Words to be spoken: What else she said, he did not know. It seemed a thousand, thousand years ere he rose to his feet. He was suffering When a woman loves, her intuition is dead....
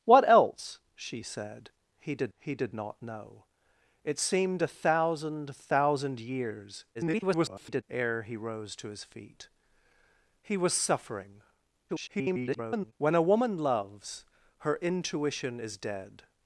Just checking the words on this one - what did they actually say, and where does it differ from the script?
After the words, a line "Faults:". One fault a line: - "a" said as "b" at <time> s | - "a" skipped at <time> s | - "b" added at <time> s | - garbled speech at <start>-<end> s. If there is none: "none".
What else she said, he did he did not know. It seemed a thousand, thousand years [garbled] ere he rose to his feet. He was suffering [garbled] When a woman loves, her intuition is dead....
Faults:
- "he did" added at 2.4 s
- garbled speech at 6.9-7.8 s
- garbled speech at 11.9-12.9 s